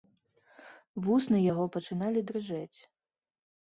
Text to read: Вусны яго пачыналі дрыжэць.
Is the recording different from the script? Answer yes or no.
no